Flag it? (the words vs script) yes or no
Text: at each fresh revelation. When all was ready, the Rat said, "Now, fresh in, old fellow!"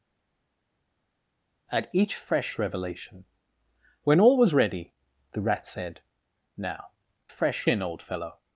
no